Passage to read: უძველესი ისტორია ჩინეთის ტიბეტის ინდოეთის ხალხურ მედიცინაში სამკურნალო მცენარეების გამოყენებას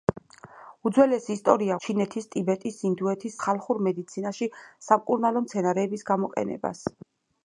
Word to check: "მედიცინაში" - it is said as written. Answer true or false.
true